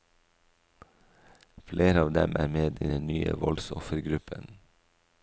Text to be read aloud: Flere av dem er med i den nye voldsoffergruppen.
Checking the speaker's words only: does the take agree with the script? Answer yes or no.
yes